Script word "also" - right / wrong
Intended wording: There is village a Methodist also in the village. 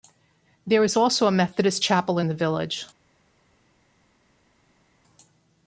wrong